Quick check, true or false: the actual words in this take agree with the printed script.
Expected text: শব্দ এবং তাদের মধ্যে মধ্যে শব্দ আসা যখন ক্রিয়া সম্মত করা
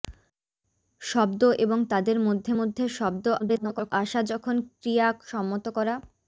false